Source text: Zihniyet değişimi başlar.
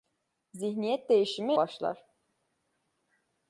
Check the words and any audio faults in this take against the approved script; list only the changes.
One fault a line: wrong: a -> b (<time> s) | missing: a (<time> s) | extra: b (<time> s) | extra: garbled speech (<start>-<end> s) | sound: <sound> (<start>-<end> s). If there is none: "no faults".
no faults